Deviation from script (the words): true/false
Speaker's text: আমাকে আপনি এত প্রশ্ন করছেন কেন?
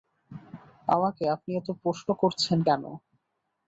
false